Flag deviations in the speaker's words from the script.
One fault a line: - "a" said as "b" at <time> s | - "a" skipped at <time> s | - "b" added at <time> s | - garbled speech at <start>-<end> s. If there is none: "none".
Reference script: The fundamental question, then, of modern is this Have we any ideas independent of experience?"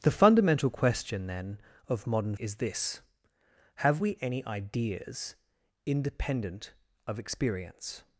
none